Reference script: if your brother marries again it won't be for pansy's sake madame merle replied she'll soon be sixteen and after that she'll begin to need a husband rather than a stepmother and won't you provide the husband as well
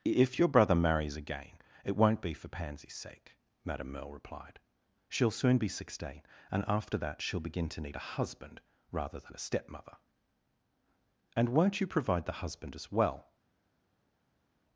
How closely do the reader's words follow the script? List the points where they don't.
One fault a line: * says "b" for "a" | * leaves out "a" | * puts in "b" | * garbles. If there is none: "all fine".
all fine